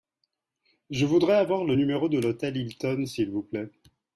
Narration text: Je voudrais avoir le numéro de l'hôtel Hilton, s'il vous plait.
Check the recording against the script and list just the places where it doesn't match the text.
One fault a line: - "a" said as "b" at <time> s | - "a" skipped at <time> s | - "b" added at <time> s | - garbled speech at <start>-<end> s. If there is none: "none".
none